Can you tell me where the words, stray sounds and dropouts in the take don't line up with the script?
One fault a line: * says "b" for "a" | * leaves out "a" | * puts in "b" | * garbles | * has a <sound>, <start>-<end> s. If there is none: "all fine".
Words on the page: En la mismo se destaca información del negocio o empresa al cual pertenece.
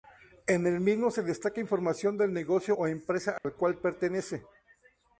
* says "el" for "la"
* has a dropout, 3.4-3.4 s